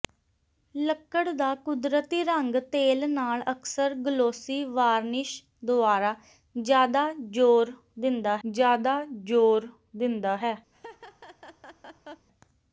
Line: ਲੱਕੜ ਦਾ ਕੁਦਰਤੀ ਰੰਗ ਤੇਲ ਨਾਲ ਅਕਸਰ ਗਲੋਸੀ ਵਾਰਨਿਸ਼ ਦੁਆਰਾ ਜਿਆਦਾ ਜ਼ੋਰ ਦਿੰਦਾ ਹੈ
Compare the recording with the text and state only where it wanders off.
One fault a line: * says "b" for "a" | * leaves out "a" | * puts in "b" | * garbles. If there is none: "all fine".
* puts in "ਜਿਆਦਾ ਜ਼ੋਰ ਦਿੰਦਾ"